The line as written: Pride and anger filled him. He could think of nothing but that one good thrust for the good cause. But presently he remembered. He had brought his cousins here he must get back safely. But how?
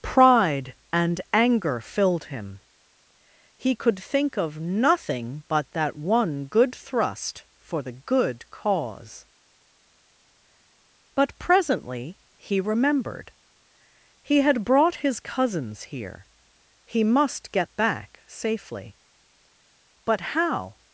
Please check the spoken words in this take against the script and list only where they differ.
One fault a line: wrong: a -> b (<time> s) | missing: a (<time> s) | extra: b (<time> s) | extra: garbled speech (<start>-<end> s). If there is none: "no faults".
no faults